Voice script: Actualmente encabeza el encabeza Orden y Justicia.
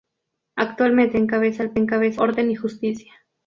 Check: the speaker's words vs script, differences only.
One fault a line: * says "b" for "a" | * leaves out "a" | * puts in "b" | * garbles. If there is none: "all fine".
all fine